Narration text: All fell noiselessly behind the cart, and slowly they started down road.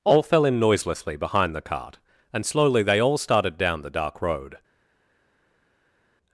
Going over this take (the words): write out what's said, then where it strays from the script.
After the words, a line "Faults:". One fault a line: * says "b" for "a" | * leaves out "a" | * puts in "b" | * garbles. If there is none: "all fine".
All fell in noiselessly behind the cart, and slowly they all started down the dark road.
Faults:
* puts in "in"
* puts in "all"
* puts in "the dark"